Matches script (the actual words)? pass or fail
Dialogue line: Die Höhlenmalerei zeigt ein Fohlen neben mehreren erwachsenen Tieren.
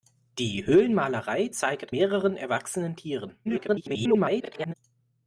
fail